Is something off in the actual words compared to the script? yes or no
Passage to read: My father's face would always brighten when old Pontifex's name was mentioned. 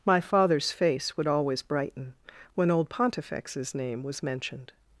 no